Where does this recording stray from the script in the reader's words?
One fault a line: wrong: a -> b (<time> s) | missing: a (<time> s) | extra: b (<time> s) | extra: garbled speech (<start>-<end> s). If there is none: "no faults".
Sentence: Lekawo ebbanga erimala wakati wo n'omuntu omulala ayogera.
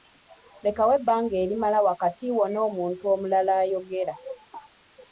no faults